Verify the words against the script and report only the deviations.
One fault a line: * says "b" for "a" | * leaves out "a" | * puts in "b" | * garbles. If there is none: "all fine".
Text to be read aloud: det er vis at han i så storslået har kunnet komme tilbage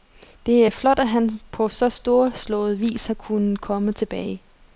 * says "flot" for "vis"
* says "på" for "i"
* puts in "vis"